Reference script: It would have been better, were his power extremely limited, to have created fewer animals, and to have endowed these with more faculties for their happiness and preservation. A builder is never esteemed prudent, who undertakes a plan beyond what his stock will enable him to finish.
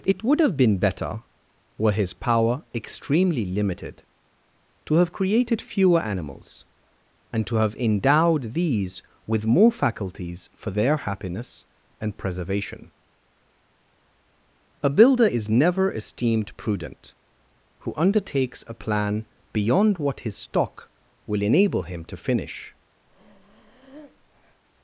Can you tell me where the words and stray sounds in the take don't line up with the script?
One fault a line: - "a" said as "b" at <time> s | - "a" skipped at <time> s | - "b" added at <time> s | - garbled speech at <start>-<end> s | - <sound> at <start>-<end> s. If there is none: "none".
- breath at 23.1-24.6 s